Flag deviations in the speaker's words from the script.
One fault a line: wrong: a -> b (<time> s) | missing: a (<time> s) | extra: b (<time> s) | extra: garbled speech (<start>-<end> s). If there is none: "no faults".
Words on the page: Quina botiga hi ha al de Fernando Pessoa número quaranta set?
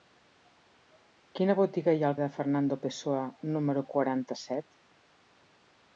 no faults